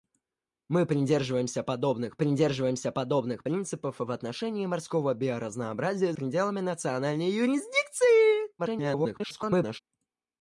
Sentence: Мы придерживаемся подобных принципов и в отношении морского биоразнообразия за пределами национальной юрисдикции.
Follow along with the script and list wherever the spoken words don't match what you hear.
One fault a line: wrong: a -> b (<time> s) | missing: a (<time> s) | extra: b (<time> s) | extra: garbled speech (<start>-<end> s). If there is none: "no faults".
extra: придерживаемся подобных (2.2 s)
missing: за (6.1 s)
extra: garbled speech (8.6-9.8 s)